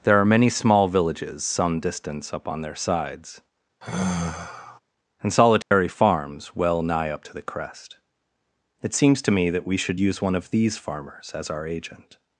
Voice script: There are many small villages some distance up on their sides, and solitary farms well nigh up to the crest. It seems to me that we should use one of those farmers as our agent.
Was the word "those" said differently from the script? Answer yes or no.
yes